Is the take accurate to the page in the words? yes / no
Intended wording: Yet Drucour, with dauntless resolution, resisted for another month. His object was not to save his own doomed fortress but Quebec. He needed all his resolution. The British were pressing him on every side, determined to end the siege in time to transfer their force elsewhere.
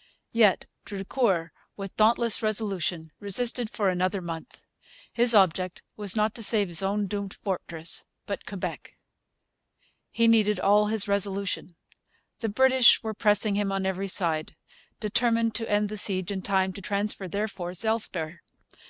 yes